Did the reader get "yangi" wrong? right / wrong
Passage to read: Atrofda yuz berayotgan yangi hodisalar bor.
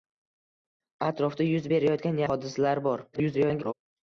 wrong